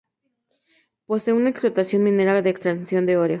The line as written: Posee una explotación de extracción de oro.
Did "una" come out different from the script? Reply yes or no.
no